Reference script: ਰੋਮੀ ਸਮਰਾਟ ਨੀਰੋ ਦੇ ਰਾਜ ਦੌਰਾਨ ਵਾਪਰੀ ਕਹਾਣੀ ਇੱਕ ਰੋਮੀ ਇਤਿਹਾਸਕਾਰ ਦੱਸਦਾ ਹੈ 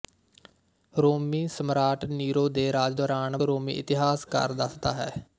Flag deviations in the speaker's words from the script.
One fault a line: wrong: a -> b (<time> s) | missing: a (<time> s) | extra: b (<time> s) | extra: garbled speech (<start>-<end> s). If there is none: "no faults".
missing: ਵਾਪਰੀ ਕਹਾਣੀ ਇੱਕ (3.4 s)